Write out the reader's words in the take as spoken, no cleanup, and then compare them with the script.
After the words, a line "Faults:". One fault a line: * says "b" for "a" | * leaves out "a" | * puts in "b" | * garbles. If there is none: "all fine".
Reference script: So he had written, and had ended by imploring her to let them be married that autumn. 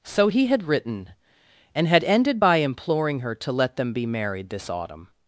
So he had written, and had ended by imploring her to let them be married this autumn.
Faults:
* says "this" for "that"